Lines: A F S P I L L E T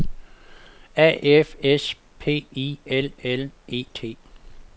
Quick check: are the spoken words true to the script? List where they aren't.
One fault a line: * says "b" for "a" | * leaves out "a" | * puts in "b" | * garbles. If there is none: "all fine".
all fine